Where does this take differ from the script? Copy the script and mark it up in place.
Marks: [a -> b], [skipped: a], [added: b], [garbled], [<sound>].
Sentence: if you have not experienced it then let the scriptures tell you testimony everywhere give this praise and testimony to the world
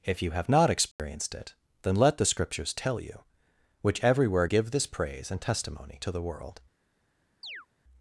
if you have not experienced [dropout] it then let the scriptures tell you [testimony -> which] everywhere give this praise and testimony to the world [chirp]